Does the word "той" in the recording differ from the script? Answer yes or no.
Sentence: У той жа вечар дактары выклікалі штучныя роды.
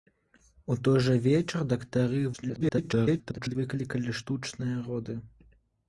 no